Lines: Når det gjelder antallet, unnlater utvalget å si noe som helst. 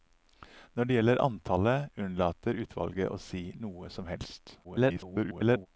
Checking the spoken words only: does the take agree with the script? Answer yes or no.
no